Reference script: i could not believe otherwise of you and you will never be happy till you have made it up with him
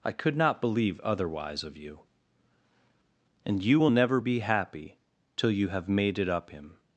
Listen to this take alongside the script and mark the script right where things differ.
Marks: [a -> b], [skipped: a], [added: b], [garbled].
i could not believe otherwise of you and you will never be happy till you have made it up [skipped: with] him